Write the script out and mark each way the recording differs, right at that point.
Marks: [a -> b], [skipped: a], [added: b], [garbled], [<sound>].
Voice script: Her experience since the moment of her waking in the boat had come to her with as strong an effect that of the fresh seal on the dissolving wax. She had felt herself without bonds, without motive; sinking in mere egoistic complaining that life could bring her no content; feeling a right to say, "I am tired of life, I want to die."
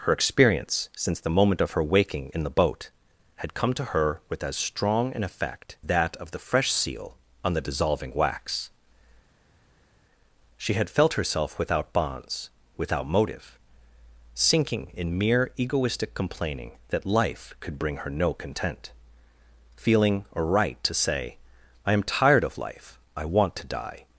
Her experience since the moment of her waking in the boat had come to her with as strong an effect that of the fresh seal on the dissolving wax. She had felt herself without bonds, without motive; sinking in mere egoistic complaining that life could bring her no content; feeling a right to say, "I am tired of life, I want to die."